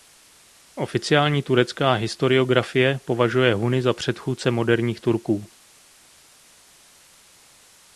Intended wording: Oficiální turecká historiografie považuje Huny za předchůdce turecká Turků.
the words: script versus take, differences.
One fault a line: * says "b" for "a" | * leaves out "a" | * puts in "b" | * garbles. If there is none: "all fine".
* says "moderních" for "turecká"